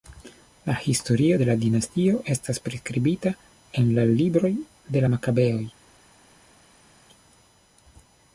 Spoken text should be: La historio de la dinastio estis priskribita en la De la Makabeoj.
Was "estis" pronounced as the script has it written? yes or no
no